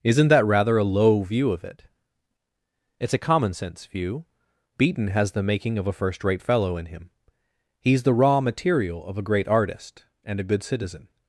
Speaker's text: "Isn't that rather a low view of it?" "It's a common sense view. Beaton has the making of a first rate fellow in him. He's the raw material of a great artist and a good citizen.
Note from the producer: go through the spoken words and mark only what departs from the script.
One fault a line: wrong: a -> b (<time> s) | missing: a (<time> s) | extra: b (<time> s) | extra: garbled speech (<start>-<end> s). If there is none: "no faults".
no faults